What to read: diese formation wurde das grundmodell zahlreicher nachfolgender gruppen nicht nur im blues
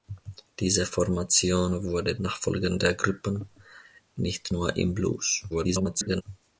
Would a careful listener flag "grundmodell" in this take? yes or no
yes